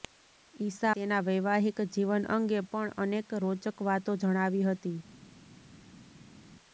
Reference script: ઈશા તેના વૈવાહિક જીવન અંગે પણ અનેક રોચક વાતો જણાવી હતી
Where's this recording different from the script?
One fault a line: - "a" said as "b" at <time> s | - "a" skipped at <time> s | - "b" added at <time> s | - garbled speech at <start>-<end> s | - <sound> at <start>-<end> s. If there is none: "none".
none